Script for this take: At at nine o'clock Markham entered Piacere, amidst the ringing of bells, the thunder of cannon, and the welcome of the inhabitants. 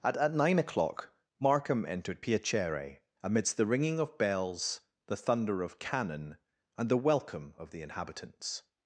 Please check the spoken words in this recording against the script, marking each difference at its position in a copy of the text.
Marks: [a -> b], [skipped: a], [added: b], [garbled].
At at nine o'clock Markham entered Piacere, amidst the ringing of bells, the thunder of cannon, and the welcome of the inhabitants.